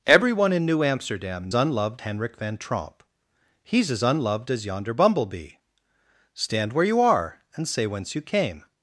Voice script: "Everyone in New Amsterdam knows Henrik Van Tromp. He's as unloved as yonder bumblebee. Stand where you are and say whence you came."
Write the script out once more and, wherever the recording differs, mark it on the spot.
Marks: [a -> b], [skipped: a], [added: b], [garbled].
"Everyone in New Amsterdam [knows -> unloved] Henrik Van Tromp. He's as unloved as yonder bumblebee. Stand where you are and say whence you came."